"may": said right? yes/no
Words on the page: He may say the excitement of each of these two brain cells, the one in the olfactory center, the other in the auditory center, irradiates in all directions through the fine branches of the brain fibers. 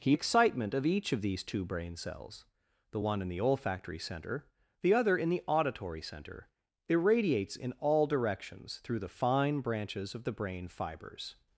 no